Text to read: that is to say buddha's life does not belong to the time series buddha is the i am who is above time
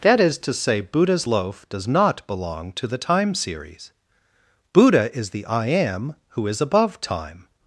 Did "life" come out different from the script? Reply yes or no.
yes